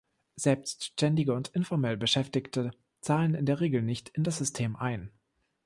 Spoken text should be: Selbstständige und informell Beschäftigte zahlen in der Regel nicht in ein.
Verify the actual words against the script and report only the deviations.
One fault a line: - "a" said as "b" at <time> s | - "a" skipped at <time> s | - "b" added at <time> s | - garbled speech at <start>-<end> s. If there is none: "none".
- "das System" added at 4.2 s